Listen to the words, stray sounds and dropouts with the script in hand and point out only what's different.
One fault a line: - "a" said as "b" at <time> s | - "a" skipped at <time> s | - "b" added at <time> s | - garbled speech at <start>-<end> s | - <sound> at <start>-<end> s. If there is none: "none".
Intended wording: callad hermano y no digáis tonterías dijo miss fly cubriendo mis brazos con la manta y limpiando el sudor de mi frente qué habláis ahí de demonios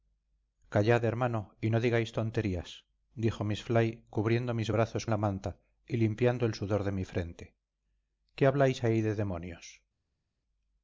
- "con" skipped at 5.1 s